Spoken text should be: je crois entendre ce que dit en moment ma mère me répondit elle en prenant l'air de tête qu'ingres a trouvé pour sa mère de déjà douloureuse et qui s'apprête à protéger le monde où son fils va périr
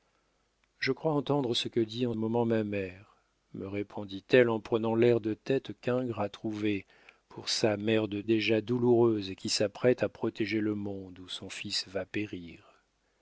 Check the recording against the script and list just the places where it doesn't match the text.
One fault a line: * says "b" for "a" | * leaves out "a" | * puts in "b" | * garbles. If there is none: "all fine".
all fine